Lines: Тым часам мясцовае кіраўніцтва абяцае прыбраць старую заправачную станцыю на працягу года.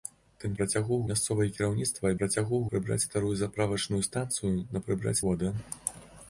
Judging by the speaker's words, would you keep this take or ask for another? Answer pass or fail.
fail